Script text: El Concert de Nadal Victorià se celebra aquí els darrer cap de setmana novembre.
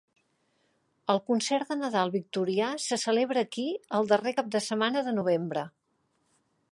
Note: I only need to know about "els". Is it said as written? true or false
false